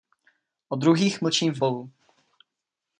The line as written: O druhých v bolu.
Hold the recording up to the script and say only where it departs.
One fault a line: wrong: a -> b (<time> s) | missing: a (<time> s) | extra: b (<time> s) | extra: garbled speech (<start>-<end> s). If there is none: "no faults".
extra: mlčím (1.2 s)